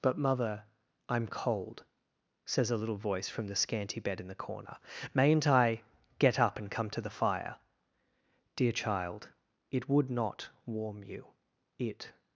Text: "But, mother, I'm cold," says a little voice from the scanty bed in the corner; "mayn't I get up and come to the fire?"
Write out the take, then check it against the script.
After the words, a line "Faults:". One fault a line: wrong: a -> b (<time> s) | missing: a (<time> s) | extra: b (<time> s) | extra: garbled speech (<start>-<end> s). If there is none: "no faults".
"But, mother, I'm cold," says a little voice from the scanty bed in the corner; "mayn't I get up and come to the fire?" "Dear child, it would not warm you; it
Faults:
extra: Dear child it would not warm you it (8.6 s)